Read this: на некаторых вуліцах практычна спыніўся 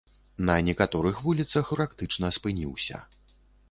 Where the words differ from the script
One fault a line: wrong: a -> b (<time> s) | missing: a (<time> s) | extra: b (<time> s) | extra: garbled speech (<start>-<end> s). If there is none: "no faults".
no faults